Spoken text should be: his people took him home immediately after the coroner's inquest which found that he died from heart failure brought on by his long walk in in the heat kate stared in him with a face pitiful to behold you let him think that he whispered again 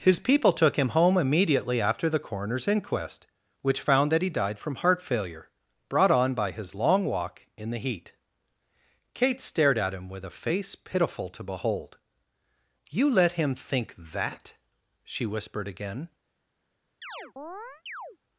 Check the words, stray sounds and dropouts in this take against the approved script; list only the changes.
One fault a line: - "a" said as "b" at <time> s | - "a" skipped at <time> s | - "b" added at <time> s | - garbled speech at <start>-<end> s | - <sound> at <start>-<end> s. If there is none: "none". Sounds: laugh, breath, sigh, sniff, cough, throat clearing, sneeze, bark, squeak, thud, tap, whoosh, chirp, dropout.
- "in" skipped at 7.7 s
- "in" said as "at" at 9.8 s
- "he" said as "she" at 15.0 s
- chirp at 17.0-18.2 s